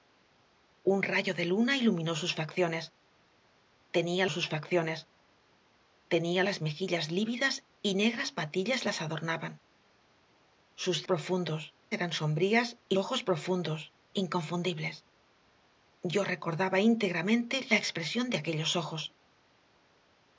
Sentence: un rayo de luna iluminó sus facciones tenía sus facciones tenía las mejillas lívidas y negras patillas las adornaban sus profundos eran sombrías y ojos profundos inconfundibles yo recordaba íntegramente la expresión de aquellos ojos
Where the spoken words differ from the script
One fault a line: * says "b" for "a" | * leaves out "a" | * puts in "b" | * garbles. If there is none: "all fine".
all fine